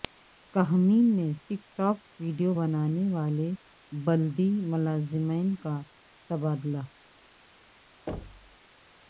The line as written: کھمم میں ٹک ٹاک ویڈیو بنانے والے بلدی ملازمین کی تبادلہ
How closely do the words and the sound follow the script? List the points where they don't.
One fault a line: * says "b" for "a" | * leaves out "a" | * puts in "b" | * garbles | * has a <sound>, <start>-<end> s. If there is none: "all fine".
* says "کا" for "کی"
* has a thud, 8.1-8.6 s